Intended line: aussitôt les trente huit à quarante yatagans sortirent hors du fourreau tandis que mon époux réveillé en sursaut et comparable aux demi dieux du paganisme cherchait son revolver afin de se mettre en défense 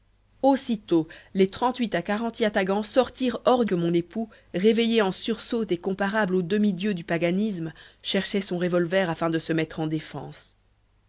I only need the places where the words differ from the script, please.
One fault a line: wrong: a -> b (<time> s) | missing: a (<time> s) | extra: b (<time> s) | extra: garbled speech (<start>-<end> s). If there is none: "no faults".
missing: du fourreau tandis (3.6 s)